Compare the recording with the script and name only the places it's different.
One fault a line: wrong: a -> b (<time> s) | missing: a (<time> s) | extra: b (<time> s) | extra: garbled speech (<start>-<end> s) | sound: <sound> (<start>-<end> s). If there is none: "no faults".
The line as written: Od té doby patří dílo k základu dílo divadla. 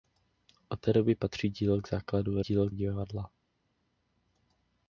no faults